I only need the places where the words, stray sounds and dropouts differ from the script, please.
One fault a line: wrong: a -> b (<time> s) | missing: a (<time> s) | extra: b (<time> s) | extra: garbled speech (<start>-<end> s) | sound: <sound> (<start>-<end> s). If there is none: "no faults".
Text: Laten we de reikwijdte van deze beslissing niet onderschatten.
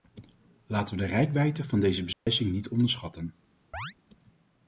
sound: dropout (2.1-2.3 s)
sound: chirp (3.7-3.9 s)